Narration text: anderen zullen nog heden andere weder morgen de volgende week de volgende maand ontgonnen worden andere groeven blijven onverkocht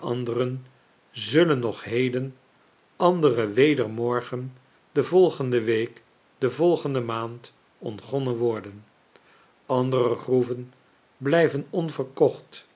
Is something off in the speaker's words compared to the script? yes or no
no